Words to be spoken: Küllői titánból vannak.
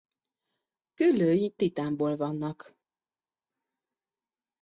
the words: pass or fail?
pass